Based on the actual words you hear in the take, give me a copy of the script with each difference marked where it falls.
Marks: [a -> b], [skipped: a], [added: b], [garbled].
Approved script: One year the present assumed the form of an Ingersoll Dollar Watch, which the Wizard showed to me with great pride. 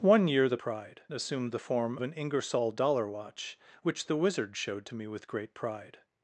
One year the [present -> pride] assumed the form [skipped: of] an Ingersoll Dollar Watch, which the Wizard showed to me with great pride.